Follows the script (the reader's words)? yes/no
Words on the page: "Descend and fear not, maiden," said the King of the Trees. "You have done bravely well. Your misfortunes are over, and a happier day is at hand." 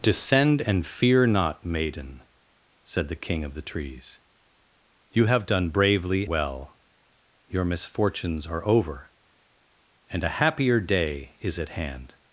yes